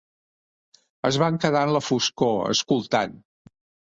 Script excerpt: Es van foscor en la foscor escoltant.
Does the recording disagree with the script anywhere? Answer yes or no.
yes